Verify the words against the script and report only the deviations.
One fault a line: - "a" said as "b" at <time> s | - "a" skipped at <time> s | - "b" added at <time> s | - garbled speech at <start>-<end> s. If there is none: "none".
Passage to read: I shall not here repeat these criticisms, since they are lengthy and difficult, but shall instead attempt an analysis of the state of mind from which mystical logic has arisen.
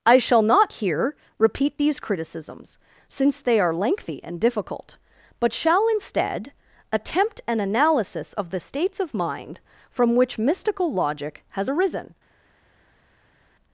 - "state" said as "states" at 8.6 s